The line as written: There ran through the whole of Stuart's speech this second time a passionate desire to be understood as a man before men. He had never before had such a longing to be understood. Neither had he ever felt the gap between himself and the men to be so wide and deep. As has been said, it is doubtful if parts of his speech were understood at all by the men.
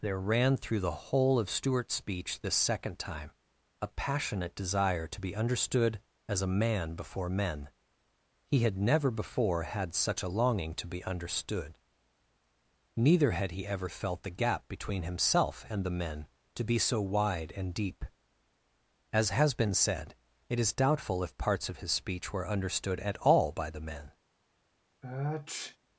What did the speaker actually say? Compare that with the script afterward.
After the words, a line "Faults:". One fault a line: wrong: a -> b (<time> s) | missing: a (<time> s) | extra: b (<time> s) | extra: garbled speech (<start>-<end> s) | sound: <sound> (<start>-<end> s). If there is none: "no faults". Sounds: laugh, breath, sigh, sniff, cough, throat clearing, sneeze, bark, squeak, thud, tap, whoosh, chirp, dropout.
There ran through the whole of Stuart's speech this second time a passionate desire to be understood as a man before men. He had never before had such a longing to be understood. Neither had he ever felt the gap between himself and the men to be so wide and deep. As has been said, it is doubtful if parts of his speech were understood at all by the men.
Faults:
sound: sniff (25.0-25.8 s)